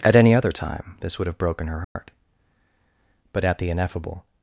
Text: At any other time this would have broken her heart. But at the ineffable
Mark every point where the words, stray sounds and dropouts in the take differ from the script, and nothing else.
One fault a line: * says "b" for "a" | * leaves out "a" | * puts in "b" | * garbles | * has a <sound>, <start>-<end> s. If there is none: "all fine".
* has a dropout, 1.8-2.0 s